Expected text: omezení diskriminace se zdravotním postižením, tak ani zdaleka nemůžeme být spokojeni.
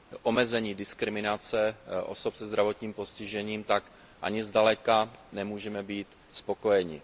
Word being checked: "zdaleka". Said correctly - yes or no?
yes